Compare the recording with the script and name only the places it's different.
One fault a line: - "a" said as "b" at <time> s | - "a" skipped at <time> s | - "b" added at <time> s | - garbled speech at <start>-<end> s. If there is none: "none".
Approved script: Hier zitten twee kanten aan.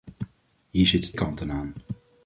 - "twee" skipped at 1.1 s